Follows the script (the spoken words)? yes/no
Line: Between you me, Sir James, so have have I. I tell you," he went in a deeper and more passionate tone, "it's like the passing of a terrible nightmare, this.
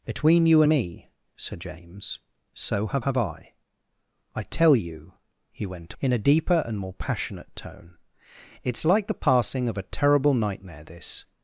yes